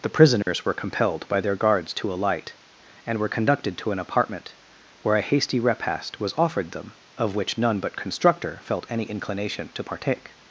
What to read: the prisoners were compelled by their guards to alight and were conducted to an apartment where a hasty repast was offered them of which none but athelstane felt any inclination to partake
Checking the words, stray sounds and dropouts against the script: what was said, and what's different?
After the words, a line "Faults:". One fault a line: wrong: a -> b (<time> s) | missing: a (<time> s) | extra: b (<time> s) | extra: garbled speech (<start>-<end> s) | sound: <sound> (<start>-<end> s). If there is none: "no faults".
the prisoners were compelled by their guards to alight and were conducted to an apartment where a hasty repast was offered them of which none but constructor felt any inclination to partake
Faults:
sound: dropout (0.4-0.5 s)
wrong: athelstane -> constructor (8.0 s)